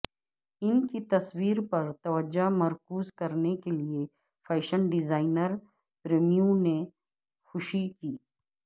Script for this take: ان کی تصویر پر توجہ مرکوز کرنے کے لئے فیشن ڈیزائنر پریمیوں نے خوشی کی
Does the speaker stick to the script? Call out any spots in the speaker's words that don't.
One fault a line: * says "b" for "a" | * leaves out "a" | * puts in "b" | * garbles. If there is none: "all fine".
all fine